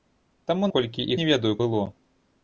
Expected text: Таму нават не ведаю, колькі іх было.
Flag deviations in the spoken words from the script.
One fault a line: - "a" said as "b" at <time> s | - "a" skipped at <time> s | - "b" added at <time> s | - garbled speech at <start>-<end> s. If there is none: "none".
- "нават" said as "колькі" at 0.8 s
- "колькі іх" skipped at 1.5 s